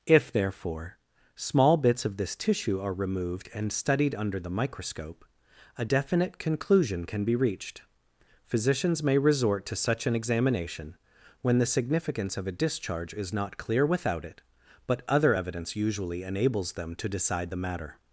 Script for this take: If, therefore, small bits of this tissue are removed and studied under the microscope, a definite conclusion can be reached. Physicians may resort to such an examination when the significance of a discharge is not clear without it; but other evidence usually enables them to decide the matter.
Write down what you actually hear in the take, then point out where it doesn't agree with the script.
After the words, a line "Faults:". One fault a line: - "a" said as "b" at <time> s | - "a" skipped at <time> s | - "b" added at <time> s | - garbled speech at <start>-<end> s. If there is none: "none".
If, therefore, small bits of this tissue are removed and studied under the microscope, a definite conclusion can be reached. Physicians may resort to such an examination when the significance of a discharge is not clear without it; but other evidence usually enables them to decide the matter.
Faults:
none